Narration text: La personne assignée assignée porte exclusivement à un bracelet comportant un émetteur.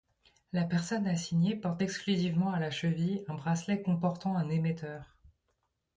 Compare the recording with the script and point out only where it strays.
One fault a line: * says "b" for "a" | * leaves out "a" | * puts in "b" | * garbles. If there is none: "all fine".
* leaves out "assignée"
* puts in "la cheville"